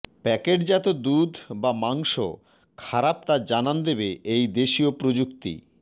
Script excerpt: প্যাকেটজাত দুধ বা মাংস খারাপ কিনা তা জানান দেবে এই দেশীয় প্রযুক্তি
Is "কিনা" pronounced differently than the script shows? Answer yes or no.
yes